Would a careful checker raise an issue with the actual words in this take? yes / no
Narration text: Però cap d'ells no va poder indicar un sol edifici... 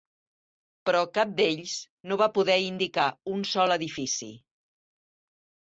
no